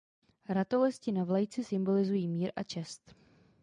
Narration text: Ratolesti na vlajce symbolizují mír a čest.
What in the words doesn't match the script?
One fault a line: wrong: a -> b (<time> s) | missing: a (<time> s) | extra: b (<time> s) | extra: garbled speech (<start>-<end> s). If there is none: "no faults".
no faults